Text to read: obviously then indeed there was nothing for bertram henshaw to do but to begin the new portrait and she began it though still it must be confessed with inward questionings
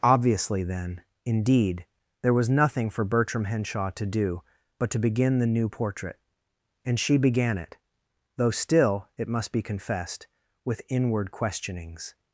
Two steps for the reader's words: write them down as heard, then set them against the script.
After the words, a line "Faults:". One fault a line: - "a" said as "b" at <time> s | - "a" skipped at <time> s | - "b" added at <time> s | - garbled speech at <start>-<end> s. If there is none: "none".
obviously then indeed there was nothing for bertram henshaw to do but to begin the new portrait and she began it though still it must be confessed with inward questionings
Faults:
none